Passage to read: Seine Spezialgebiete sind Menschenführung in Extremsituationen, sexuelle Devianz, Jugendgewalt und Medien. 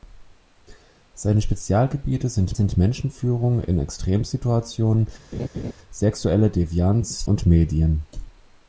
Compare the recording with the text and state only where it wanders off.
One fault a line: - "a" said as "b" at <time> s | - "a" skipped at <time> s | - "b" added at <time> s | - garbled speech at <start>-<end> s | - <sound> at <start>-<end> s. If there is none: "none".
- "sind" added at 2.5 s
- laugh at 5.3-5.7 s
- "Jugendgewalt" skipped at 7.3 s